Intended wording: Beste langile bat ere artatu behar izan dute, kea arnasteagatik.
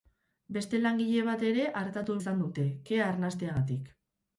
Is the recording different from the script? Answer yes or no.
yes